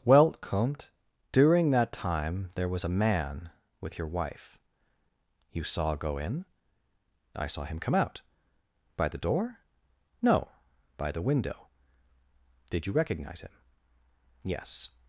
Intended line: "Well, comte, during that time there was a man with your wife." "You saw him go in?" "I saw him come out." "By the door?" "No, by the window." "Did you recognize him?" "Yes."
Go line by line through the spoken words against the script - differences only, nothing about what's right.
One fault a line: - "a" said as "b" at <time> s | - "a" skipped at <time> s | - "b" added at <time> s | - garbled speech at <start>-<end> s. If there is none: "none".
- "him" skipped at 6.0 s